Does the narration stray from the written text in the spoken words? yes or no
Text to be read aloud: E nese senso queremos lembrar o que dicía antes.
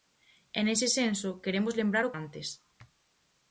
yes